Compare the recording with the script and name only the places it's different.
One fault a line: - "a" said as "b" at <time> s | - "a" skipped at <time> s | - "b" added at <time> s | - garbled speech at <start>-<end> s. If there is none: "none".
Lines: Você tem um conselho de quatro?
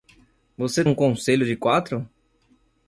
- "tem" skipped at 0.8 s